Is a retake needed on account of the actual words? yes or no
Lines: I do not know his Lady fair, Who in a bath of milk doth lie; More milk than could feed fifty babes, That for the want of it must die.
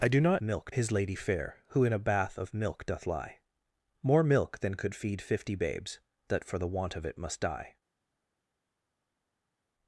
yes